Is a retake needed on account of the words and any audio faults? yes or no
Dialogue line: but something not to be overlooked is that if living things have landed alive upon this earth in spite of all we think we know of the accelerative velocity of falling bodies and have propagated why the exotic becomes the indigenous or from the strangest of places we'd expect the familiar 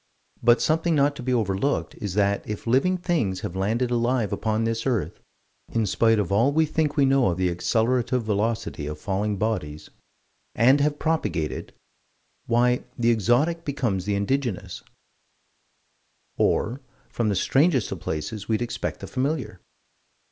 no